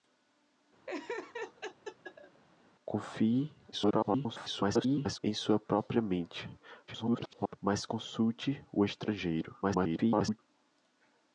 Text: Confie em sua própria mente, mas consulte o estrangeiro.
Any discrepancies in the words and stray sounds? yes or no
yes